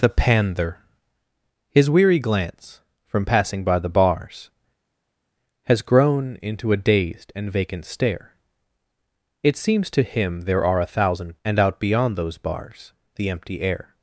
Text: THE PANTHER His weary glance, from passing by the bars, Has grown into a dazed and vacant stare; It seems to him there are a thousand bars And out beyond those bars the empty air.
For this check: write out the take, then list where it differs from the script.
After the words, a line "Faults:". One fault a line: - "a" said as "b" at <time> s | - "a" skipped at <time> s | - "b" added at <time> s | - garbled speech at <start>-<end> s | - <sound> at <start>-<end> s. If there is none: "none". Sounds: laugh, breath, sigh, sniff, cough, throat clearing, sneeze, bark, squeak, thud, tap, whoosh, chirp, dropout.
THE PANTHER His weary glance, from passing by the bars, Has grown into a dazed and vacant stare; It seems to him there are a thousand And out beyond those bars the empty air.
Faults:
- "bars" skipped at 11.4 s